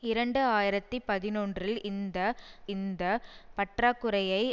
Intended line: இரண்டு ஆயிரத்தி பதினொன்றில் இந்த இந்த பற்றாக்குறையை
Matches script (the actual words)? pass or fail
pass